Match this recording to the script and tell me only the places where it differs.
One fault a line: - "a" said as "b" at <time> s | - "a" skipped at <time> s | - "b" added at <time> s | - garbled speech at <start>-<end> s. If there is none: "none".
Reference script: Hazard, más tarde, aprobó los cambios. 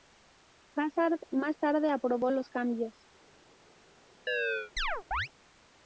none